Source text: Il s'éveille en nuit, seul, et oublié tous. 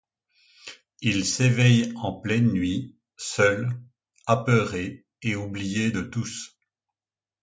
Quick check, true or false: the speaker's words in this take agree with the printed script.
false